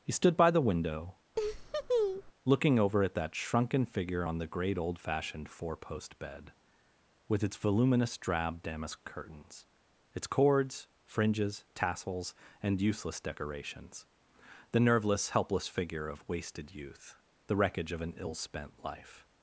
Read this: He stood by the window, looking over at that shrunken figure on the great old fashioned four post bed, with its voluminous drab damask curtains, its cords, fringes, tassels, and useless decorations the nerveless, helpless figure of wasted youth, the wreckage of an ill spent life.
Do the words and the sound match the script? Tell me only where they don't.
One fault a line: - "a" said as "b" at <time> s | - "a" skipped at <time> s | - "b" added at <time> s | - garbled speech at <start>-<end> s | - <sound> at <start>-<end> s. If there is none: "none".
- laugh at 1.4-2.3 s